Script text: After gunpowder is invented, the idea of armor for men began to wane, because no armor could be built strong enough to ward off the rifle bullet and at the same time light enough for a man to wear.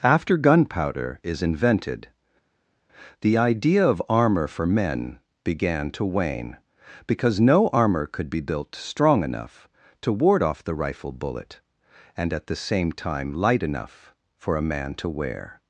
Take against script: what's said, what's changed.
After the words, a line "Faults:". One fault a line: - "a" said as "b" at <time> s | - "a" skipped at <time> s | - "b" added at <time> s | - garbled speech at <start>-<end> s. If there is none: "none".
After gunpowder is invented, the idea of armor for men began to wane, because no armor could be built strong enough to ward off the rifle bullet and at the same time light enough for a man to wear.
Faults:
none